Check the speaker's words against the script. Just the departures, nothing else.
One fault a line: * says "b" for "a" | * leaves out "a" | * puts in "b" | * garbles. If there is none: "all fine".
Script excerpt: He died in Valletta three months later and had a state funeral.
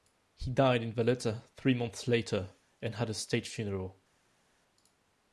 all fine